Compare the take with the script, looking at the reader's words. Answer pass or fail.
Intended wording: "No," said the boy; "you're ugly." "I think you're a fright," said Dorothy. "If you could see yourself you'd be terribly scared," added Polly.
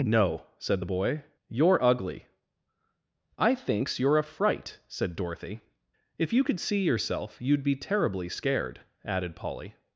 fail